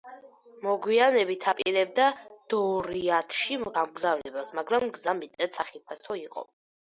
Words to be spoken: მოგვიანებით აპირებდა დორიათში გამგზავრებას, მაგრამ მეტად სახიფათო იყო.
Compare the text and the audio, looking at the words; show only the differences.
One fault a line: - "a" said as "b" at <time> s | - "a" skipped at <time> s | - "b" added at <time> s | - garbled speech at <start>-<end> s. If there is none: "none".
- "გზა" added at 5.0 s